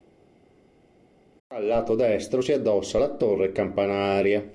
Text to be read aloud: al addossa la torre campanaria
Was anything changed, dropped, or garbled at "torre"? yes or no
no